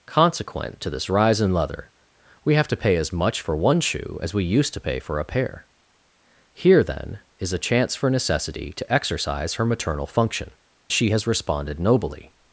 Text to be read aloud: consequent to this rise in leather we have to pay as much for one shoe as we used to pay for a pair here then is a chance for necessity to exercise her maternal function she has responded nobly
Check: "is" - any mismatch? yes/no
no